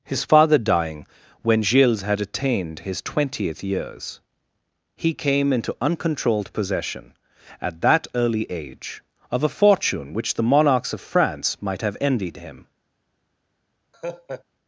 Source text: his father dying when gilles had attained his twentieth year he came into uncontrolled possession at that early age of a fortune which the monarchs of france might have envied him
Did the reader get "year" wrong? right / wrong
wrong